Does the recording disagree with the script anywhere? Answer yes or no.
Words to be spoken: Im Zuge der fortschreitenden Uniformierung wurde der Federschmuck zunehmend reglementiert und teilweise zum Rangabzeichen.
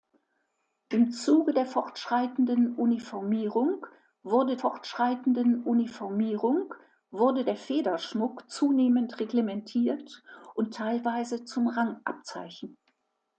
yes